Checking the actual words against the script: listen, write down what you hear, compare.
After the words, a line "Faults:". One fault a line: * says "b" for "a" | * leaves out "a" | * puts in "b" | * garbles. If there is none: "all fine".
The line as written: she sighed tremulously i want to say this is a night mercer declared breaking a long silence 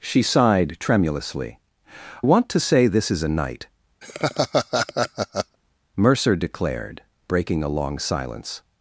she sighed tremulously want to say this is a night mercer declared breaking a long silence
Faults:
* leaves out "i"